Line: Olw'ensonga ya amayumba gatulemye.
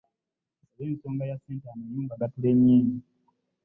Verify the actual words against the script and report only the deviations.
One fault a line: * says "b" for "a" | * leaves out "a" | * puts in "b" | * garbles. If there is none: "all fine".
* puts in "ssente"